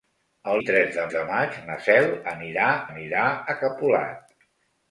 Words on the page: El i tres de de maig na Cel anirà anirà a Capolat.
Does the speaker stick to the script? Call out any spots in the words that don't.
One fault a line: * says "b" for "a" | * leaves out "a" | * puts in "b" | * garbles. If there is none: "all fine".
all fine